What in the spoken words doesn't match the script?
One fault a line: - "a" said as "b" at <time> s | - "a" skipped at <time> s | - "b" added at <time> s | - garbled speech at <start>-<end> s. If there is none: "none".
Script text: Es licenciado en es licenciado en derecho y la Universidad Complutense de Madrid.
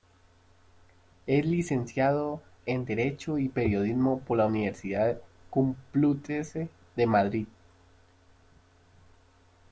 - "es licenciado en derecho y" said as "derecho y periodismo por" at 2.9 s